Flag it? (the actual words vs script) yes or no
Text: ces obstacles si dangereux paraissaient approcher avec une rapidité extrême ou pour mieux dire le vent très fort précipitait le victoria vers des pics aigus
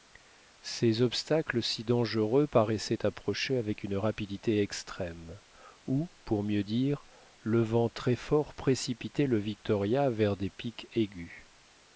no